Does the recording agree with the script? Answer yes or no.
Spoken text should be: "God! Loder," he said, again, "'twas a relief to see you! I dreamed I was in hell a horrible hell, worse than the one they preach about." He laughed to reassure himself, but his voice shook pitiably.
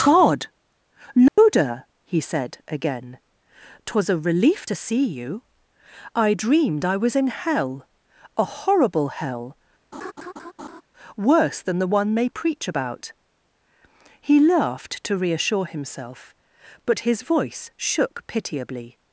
yes